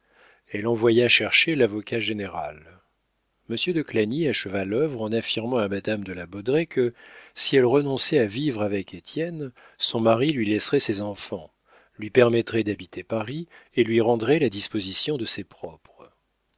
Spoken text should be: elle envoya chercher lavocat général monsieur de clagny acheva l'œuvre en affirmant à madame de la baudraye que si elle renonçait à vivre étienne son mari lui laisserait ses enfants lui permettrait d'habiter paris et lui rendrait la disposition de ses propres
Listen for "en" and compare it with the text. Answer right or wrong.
right